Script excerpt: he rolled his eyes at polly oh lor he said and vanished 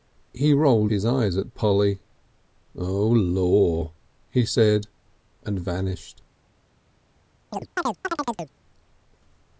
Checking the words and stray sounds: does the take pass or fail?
fail